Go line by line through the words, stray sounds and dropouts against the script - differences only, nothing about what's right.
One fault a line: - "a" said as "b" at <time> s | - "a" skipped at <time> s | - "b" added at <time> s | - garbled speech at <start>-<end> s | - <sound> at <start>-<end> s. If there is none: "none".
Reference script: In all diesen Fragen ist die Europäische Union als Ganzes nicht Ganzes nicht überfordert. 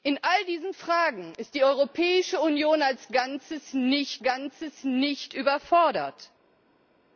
none